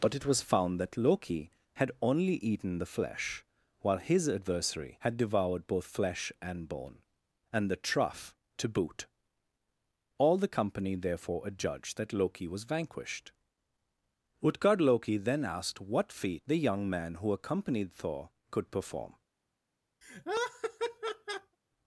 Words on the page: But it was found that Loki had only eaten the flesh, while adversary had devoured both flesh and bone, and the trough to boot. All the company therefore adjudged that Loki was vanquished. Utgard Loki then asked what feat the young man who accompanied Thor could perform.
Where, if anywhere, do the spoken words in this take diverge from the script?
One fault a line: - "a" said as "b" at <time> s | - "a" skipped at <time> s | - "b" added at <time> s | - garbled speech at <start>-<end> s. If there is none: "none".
- "his" added at 4.0 s